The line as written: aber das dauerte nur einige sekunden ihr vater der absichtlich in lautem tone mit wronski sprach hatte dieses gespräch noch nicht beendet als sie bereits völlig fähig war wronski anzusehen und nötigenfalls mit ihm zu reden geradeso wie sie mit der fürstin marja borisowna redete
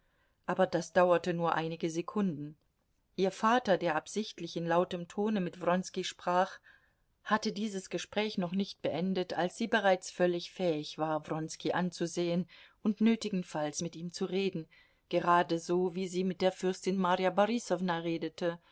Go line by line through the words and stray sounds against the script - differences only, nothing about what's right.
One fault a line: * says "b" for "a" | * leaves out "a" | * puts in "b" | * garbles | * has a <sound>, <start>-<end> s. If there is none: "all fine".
all fine